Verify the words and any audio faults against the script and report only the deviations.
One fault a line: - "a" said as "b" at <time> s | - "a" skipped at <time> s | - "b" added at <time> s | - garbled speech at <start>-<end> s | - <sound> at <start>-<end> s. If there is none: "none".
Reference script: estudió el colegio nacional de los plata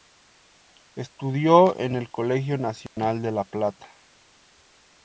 - "en" added at 1.8 s
- dropout at 2.9-3.0 s
- "los" said as "la" at 3.3 s